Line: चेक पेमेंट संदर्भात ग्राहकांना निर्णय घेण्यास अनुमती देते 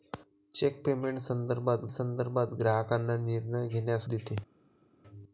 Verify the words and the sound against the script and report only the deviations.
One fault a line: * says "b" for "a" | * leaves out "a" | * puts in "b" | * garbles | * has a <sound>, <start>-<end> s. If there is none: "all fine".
* puts in "संदर्भात"
* leaves out "अनुमती"